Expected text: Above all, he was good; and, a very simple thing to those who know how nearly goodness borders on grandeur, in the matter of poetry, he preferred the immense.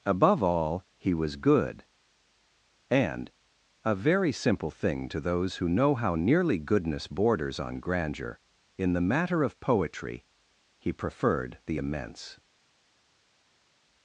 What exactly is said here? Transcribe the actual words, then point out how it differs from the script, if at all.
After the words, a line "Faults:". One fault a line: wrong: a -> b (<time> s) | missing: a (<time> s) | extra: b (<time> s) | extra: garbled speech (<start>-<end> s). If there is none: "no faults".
Above all, he was good; and, a very simple thing to those who know how nearly goodness borders on grandeur, in the matter of poetry, he preferred the immense.
Faults:
no faults